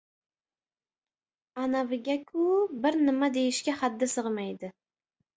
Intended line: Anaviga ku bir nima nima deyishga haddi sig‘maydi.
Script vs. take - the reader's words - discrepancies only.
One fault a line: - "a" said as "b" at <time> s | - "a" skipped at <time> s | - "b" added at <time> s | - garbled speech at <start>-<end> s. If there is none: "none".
- "nima" skipped at 3.3 s